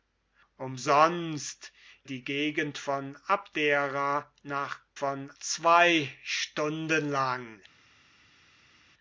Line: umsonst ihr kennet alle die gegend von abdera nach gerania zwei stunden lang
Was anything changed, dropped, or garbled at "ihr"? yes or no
yes